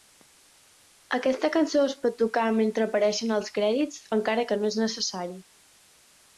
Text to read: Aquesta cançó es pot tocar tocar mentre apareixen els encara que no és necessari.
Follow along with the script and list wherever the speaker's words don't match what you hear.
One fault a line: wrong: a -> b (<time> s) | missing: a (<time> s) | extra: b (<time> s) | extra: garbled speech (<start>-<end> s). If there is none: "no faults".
missing: tocar (2.5 s)
extra: crèdits (3.6 s)